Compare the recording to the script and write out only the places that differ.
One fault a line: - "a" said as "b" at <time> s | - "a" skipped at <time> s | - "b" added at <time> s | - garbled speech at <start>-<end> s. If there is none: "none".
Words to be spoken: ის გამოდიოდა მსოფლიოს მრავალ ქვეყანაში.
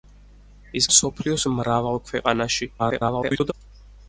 - "გამოდიოდა" skipped at 0.9 s
- garbled speech at 2.8-3.5 s